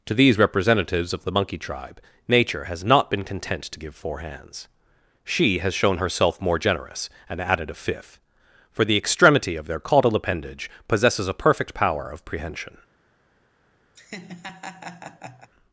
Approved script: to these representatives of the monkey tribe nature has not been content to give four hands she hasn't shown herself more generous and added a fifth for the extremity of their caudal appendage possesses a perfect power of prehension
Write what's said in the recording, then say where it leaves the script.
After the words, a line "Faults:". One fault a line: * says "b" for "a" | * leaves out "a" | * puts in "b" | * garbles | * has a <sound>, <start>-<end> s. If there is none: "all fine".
to these representatives of the monkey tribe nature has not been content to give four hands she has shown herself more generous and added a fifth for the extremity of their caudal appendage possesses a perfect power of prehension
Faults:
* says "has" for "hasn't"
* has a laugh, 13.9-15.5 s